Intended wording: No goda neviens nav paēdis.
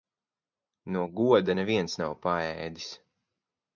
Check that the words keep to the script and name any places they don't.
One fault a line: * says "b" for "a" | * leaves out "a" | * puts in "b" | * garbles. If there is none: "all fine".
all fine